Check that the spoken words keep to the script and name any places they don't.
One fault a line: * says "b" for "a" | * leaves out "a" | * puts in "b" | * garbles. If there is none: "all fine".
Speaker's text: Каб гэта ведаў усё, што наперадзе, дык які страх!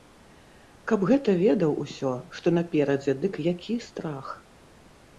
all fine